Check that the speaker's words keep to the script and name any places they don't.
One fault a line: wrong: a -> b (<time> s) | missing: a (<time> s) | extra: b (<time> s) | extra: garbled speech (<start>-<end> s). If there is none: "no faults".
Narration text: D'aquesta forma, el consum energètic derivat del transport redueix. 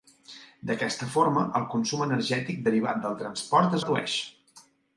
no faults